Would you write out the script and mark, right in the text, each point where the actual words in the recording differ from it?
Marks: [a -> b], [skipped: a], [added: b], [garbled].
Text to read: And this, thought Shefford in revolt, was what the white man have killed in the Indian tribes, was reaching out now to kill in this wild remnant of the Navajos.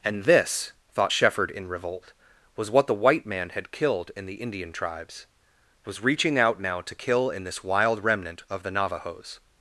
And this, thought Shefford in revolt, was what the white man [have -> had] killed in the Indian tribes, was reaching out now to kill in this wild remnant of the Navajos.